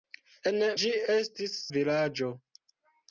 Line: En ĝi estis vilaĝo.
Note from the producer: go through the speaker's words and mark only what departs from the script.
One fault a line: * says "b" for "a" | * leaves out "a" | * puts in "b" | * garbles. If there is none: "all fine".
all fine